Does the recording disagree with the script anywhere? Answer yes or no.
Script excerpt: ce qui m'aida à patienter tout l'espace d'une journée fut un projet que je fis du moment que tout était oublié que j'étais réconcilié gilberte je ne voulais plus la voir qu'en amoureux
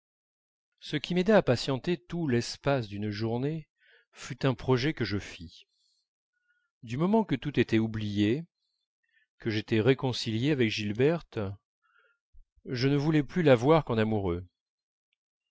yes